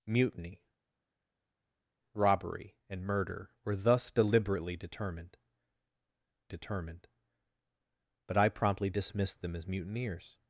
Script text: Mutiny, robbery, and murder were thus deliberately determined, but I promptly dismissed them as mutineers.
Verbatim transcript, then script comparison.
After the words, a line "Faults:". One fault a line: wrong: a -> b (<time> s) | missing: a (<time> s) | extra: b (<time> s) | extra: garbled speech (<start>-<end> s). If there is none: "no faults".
Mutiny, robbery, and murder were thus deliberately determined determined, but I promptly dismissed them as mutineers.
Faults:
extra: determined (6.5 s)